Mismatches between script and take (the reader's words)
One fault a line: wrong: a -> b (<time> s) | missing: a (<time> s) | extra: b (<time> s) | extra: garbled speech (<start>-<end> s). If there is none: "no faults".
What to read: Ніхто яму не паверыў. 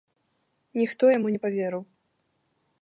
no faults